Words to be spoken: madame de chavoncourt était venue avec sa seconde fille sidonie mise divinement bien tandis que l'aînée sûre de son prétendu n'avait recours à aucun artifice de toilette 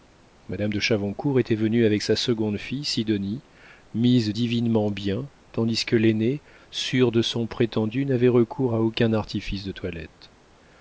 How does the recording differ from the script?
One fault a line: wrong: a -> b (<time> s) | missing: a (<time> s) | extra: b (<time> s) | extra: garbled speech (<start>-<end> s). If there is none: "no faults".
no faults